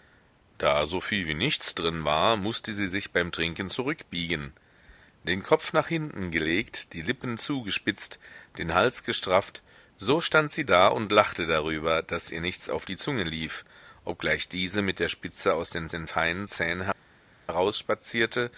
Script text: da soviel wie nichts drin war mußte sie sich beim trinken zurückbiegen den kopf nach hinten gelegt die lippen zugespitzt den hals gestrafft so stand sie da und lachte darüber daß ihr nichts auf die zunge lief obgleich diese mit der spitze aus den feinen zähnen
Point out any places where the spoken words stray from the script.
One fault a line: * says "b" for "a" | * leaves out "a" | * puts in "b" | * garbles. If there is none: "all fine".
* puts in "den"